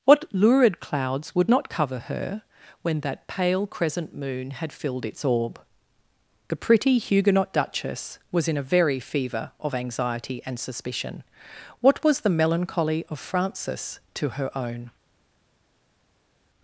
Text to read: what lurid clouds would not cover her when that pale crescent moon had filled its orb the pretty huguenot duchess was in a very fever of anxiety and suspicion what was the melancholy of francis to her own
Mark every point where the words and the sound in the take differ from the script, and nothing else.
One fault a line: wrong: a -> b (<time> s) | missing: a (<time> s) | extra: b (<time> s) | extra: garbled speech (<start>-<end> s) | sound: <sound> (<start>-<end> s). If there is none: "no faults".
no faults